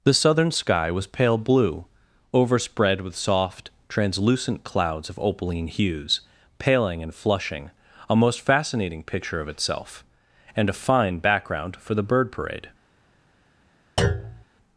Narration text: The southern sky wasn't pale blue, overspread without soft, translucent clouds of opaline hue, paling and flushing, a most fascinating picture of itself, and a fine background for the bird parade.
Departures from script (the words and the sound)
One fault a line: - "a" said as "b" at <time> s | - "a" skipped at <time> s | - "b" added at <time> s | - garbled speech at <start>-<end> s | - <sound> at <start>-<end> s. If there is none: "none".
- "wasn't" said as "was" at 0.9 s
- "without" said as "with" at 3.0 s
- "hue" said as "hues" at 5.7 s
- thud at 14.0-14.4 s